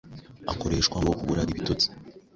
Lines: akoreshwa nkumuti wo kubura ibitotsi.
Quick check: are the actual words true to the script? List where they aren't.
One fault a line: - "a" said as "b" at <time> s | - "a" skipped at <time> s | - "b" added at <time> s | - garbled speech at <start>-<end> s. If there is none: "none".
- "nkumuti" skipped at 1.0 s